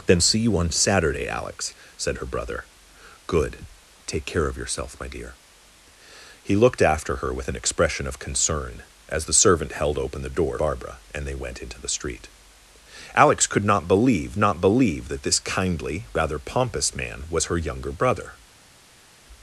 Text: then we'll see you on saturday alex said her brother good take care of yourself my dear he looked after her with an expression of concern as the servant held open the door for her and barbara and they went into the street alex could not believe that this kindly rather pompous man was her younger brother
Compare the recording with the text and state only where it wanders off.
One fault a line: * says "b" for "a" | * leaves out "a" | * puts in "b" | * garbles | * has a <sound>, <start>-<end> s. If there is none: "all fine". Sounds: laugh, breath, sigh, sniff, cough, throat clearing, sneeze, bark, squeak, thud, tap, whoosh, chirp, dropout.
* leaves out "we'll"
* leaves out "for her and"
* puts in "not believe"